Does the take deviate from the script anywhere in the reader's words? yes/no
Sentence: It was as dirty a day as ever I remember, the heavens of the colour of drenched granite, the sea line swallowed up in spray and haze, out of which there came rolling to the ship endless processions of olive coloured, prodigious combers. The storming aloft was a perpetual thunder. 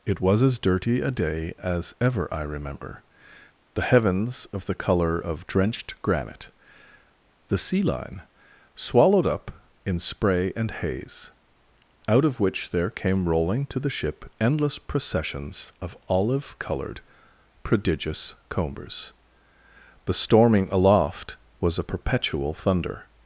no